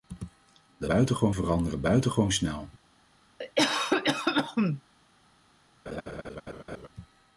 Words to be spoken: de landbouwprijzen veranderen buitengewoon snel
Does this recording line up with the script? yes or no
no